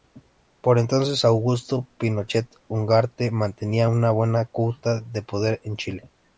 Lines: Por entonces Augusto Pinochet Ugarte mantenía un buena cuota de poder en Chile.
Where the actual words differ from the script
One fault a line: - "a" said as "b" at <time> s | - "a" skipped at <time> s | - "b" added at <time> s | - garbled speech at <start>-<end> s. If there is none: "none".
- "un" said as "una" at 3.9 s